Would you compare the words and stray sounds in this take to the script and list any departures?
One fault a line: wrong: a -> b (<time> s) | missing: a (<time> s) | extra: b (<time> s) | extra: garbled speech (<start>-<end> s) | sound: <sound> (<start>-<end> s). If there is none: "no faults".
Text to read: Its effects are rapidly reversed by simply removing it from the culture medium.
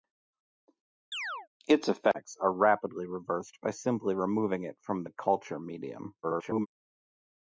sound: chirp (1.1-1.5 s)
extra: garbled speech (6.2-6.7 s)